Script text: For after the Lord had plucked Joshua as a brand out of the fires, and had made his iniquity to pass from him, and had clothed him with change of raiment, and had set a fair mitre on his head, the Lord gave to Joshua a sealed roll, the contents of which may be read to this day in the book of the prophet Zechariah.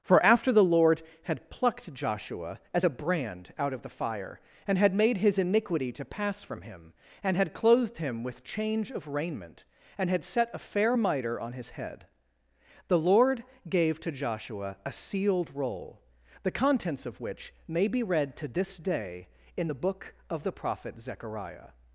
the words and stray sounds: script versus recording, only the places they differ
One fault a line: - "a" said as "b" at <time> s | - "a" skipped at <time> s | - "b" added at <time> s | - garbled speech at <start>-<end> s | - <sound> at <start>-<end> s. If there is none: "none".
- "fires" said as "fire" at 3.9 s